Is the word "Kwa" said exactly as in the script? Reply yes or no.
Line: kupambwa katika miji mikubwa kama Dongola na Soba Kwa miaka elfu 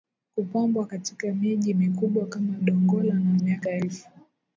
no